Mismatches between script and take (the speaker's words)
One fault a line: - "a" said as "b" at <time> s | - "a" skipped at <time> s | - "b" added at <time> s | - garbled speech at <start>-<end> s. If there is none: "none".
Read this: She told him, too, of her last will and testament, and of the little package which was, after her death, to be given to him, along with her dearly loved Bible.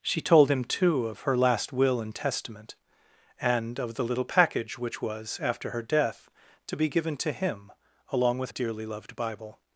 - "her" skipped at 8.5 s